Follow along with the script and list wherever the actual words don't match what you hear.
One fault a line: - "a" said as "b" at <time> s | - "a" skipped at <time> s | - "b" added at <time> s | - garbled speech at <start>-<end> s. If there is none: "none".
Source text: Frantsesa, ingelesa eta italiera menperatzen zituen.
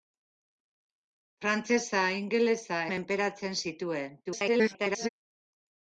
- "eta italiera" skipped at 2.8 s
- garbled speech at 4.2-5.1 s